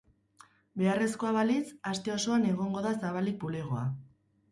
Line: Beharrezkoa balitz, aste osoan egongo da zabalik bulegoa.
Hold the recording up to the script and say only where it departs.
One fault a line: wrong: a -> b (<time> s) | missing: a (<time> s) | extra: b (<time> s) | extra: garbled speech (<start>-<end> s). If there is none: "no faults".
no faults